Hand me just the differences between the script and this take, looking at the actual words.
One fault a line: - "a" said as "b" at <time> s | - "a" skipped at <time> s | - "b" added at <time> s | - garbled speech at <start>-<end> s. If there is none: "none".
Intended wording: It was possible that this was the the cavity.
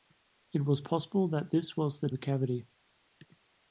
none